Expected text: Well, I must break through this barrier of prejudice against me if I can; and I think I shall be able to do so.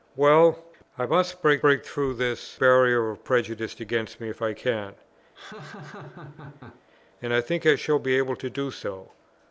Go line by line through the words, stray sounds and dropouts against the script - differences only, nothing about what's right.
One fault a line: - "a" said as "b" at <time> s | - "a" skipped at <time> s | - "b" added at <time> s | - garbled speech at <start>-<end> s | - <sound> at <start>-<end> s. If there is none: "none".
- "break" added at 1.6 s
- laugh at 5.3-6.8 s